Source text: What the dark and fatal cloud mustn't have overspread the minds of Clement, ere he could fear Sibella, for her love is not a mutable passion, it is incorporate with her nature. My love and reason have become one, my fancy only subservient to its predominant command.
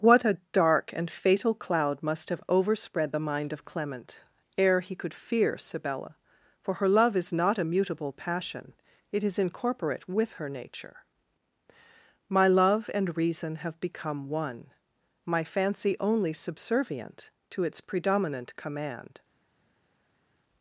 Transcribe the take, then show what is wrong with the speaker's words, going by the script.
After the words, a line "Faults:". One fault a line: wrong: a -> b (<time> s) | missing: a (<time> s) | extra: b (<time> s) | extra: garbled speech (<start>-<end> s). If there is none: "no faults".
What a dark and fatal cloud must have overspread the mind of Clement, ere he could fear Sibella, for her love is not a mutable passion, it is incorporate with her nature. My love and reason have become one, my fancy only subservient to its predominant command.
Faults:
wrong: the -> a (0.2 s)
wrong: mustn't -> must (2.0 s)
wrong: minds -> mind (3.2 s)